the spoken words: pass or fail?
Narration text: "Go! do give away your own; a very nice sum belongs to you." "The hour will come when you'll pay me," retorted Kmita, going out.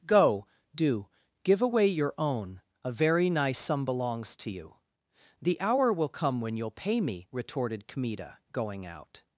pass